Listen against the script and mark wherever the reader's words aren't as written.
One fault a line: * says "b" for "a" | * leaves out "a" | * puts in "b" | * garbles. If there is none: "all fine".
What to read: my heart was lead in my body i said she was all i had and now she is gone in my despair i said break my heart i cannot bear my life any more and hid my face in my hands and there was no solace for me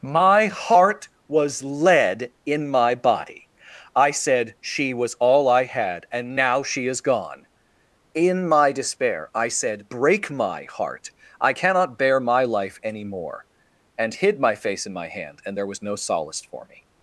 * says "hand" for "hands"